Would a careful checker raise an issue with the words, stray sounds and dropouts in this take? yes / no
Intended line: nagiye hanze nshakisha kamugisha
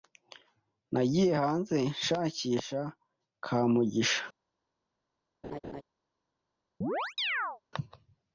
yes